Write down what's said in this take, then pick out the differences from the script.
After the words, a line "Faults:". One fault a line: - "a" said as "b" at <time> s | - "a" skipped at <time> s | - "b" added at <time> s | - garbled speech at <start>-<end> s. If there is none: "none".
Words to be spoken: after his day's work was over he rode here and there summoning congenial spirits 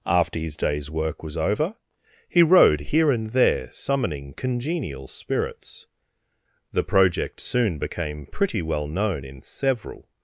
after his day's work was over he rode here and there summoning congenial spirits the project soon became pretty well known in several
Faults:
- "the project soon became pretty well known in several" added at 6.7 s